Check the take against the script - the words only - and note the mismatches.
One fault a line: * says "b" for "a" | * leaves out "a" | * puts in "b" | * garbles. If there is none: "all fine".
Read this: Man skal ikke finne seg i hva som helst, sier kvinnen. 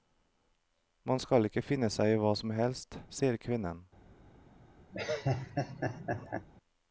all fine